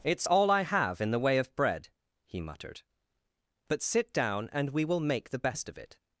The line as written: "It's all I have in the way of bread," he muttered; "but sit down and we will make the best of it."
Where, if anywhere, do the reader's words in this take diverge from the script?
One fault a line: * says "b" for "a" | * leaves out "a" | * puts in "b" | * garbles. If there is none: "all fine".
all fine